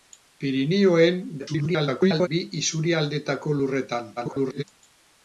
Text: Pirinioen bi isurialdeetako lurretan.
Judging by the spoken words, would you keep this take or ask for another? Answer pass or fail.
fail